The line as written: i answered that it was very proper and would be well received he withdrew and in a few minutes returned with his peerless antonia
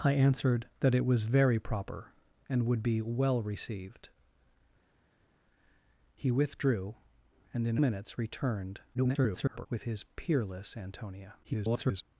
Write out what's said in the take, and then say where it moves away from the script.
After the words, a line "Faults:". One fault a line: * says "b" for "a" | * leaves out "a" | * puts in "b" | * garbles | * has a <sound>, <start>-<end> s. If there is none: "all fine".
i answered that it was very proper and would be well received he withdrew and in minutes returned [garbled] with his peerless antonia [garbled]
Faults:
* leaves out "a few"
* garbles
* garbles